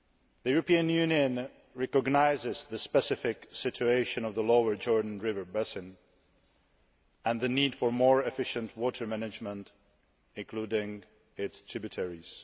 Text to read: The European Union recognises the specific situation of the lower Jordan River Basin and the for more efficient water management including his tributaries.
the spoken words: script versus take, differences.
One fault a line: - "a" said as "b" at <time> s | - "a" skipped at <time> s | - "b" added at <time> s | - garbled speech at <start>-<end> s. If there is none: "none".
- "need" added at 7.5 s
- "his" said as "its" at 11.4 s